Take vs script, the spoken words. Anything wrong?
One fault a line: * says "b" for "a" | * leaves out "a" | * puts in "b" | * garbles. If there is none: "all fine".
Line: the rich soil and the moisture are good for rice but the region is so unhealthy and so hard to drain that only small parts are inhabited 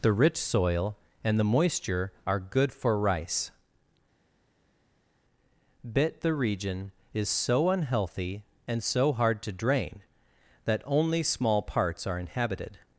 * says "bit" for "but"